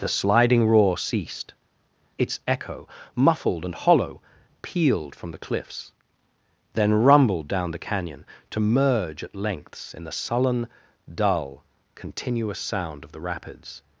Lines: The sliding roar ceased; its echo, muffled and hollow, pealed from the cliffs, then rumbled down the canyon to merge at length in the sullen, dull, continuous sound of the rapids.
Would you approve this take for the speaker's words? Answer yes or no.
no